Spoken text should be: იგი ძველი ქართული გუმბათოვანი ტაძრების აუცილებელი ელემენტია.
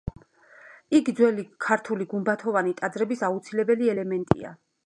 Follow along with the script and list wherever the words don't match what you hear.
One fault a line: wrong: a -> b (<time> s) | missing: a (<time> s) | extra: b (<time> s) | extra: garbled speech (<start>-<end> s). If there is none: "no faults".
no faults